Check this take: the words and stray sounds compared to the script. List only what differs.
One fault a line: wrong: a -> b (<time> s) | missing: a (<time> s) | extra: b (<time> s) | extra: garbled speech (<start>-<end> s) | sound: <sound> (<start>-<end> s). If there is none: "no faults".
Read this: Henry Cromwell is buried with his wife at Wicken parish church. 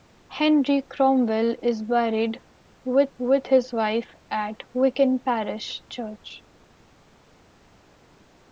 extra: with (3.2 s)